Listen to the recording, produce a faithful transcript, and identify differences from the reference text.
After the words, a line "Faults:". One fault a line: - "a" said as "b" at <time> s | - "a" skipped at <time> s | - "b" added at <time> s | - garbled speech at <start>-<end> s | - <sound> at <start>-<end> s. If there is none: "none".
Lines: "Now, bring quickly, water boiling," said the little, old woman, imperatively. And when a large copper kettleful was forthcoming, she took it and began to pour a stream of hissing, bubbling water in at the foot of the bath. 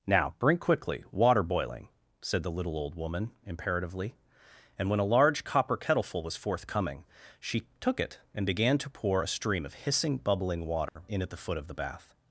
"Now, bring quickly, water boiling," said the little, old woman, imperatively. And when a large copper kettleful was forthcoming, she took it and began to pour a stream of hissing, bubbling water in at the foot of the bath.
Faults:
- dropout at 10.9-11.0 s